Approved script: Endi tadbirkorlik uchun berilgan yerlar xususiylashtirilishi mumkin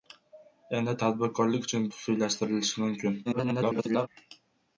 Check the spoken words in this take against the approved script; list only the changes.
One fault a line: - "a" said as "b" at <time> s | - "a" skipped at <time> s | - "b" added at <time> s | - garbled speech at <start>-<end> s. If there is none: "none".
- "berilgan yerlar" skipped at 1.9 s
- garbled speech at 3.2-4.1 s